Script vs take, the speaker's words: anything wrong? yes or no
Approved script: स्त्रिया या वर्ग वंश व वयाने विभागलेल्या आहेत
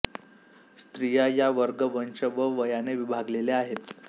no